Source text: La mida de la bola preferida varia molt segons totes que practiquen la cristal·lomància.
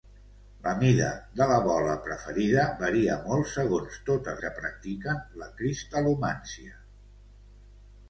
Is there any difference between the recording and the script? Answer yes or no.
no